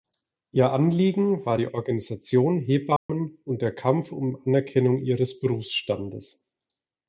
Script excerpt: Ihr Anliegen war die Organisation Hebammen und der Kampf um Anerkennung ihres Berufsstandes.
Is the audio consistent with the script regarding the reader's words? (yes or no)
yes